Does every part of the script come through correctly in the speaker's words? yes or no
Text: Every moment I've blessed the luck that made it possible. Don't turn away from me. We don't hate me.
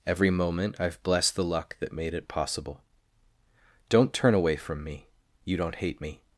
no